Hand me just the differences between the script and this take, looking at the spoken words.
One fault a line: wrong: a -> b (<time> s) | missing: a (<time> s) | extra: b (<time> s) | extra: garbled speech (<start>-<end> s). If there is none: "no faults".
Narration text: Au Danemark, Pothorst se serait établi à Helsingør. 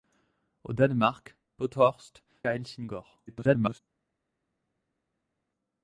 missing: se serait établi (2.2 s)
extra: garbled speech (3.3-3.8 s)